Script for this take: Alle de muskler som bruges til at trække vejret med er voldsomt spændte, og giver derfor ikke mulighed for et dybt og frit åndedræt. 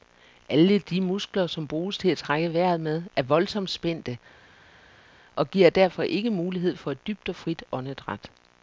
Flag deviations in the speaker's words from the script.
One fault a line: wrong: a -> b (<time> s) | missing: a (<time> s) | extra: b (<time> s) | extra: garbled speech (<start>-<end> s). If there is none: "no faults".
no faults